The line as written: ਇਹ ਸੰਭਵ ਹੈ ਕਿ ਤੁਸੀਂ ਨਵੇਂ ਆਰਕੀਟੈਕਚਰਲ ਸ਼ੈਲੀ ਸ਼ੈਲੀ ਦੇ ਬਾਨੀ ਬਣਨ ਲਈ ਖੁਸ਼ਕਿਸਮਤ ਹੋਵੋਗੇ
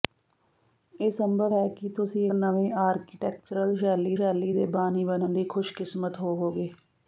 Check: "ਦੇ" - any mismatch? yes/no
no